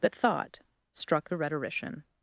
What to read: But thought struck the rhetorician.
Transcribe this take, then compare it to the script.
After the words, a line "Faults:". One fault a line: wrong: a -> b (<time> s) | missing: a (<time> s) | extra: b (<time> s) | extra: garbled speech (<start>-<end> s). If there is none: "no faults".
But thought struck the rhetorician.
Faults:
no faults